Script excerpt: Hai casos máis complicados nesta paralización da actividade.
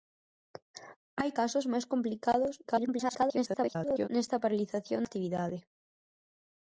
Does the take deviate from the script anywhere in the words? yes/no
yes